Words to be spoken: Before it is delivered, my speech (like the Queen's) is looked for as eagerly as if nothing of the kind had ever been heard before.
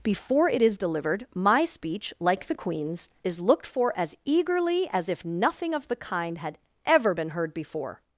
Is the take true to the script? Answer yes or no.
yes